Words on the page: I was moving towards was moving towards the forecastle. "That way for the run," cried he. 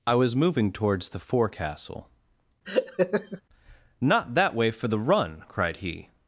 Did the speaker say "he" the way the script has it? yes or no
yes